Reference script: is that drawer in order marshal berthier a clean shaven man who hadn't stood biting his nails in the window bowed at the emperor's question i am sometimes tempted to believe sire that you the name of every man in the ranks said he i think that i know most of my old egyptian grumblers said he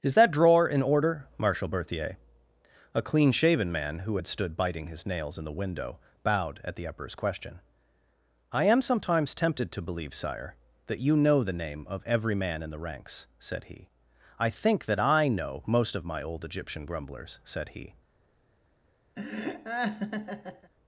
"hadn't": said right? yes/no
no